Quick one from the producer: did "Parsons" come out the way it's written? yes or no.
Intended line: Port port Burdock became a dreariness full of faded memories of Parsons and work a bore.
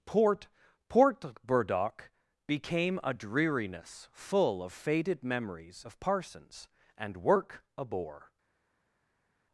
yes